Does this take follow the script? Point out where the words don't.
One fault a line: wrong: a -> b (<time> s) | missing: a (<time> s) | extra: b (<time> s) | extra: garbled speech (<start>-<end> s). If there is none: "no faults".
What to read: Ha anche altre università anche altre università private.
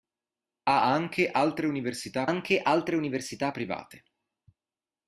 no faults